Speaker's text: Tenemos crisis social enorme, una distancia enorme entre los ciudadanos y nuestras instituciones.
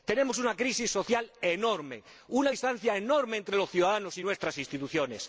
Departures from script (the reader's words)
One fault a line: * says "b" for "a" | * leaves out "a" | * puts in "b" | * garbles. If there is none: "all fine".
* puts in "una"